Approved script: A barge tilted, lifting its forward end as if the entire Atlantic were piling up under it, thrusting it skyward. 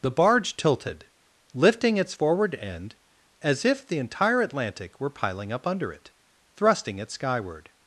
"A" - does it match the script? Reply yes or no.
no